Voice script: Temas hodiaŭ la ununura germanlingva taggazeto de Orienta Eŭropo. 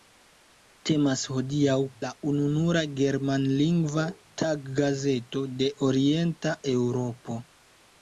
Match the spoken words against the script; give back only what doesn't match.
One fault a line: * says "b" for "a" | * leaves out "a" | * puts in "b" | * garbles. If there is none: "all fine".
all fine